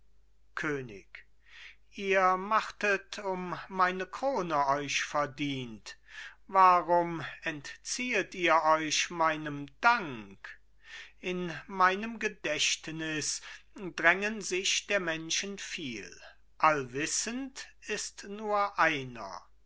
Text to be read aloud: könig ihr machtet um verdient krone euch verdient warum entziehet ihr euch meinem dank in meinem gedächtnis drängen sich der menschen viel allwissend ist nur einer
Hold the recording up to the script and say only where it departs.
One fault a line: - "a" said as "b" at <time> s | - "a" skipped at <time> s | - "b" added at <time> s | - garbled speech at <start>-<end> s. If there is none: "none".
- "verdient" said as "meine" at 3.7 s